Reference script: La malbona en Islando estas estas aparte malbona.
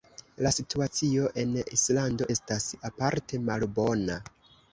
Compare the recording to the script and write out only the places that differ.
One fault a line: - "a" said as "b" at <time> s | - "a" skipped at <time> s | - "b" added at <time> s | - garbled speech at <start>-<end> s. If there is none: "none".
- "malbona" said as "situacio" at 0.5 s
- "estas" skipped at 2.7 s